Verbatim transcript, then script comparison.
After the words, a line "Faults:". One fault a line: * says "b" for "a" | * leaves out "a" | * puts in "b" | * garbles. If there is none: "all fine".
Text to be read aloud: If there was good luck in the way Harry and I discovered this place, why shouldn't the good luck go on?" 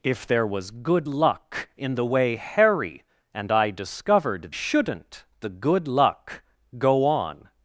If there was good luck in the way Harry and I discovered shouldn't the good luck go on?"
Faults:
* leaves out "this place why"